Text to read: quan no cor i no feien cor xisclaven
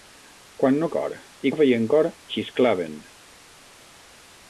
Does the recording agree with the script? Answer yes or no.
yes